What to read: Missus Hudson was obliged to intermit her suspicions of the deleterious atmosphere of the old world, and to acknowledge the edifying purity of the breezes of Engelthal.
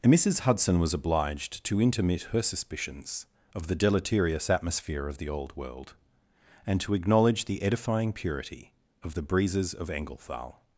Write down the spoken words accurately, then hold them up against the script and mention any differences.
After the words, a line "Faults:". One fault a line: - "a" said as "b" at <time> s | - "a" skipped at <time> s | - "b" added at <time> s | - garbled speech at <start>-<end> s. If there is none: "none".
Missus Hudson was obliged to intermit her suspicions of the deleterious atmosphere of the old world, and to acknowledge the edifying purity of the breezes of Engelthal.
Faults:
none